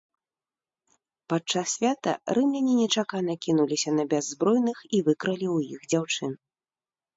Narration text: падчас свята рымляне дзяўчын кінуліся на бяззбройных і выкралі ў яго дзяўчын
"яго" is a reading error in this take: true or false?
true